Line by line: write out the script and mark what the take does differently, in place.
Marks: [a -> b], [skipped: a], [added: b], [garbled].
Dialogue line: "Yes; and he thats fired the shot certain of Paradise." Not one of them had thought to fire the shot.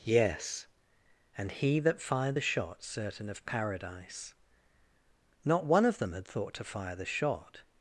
"Yes; and he [thats -> that] fired the shot certain of Paradise." Not one of them had thought to fire the shot.